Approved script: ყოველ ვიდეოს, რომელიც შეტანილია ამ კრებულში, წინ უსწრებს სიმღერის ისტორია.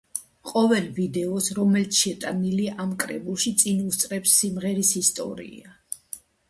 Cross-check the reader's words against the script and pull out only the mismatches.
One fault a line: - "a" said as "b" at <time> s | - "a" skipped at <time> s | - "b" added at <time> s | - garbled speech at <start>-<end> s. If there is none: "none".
none